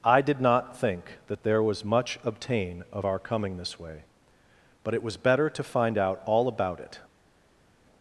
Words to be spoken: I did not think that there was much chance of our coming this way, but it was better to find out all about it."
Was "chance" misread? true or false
true